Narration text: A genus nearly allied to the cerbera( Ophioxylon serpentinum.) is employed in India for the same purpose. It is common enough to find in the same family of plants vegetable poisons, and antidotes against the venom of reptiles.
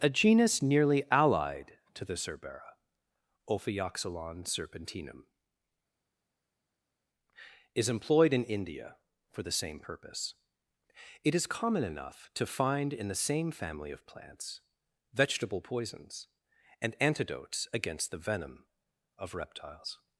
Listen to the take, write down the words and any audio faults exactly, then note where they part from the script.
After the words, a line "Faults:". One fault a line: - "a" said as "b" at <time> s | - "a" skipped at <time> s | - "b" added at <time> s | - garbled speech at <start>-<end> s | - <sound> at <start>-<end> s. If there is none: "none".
A genus nearly allied to the cerbera( Ophioxylon serpentinum.) is employed in India for the same purpose. It is common enough to find in the same family of plants vegetable poisons, and antidotes against the venom of reptiles.
Faults:
none